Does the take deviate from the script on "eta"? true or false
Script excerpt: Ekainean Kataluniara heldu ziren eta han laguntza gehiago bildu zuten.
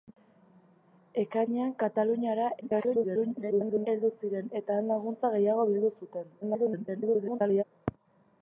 false